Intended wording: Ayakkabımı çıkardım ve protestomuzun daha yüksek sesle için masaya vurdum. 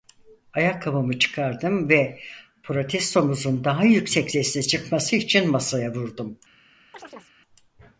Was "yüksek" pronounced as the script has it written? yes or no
yes